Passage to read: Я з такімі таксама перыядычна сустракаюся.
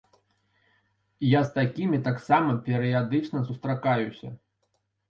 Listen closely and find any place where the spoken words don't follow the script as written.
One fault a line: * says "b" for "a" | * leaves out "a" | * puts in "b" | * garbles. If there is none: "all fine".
all fine